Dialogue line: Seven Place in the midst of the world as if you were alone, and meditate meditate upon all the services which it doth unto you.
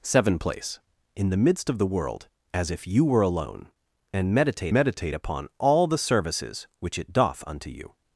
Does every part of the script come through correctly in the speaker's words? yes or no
yes